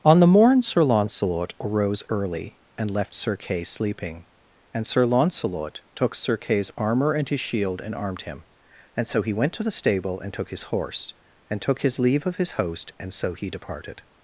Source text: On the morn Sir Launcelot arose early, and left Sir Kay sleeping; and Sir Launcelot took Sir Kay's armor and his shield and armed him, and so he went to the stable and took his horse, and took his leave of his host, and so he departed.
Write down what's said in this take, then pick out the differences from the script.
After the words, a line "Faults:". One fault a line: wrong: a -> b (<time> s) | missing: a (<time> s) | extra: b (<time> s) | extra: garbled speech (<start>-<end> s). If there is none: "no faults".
On the morn Sir Launcelot arose early, and left Sir Kay sleeping; and Sir Launcelot took Sir Kay's armor and his shield and armed him, and so he went to the stable and took his horse, and took his leave of his host, and so he departed.
Faults:
no faults